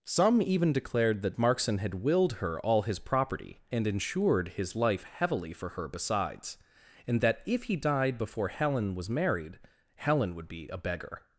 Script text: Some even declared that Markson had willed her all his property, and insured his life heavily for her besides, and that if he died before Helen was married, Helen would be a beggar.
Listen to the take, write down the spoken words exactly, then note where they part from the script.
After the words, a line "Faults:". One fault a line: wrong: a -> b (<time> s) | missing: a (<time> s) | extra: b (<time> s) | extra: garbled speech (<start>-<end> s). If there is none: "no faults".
Some even declared that Markson had willed her all his property, and insured his life heavily for her besides, and that if he died before Helen was married, Helen would be a beggar.
Faults:
no faults